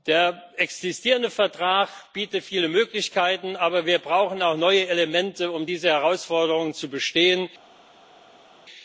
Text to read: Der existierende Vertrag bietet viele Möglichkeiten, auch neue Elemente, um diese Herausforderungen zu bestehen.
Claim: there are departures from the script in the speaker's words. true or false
true